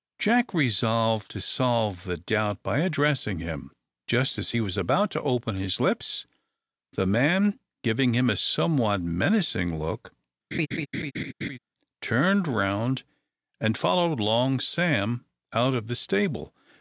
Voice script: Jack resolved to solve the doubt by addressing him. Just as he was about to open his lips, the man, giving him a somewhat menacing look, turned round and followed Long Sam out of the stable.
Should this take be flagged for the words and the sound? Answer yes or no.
yes